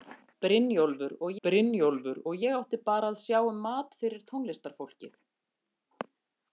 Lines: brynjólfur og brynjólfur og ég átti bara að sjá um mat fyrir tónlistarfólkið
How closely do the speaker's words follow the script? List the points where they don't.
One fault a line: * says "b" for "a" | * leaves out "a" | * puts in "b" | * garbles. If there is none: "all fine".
all fine